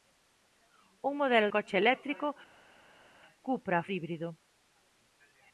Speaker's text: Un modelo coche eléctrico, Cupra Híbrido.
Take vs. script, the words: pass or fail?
pass